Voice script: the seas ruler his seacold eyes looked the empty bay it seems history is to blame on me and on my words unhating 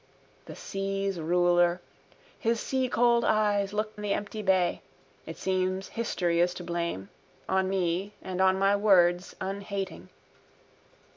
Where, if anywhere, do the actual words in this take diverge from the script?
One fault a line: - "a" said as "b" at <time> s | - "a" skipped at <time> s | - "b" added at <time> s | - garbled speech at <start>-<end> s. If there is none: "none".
none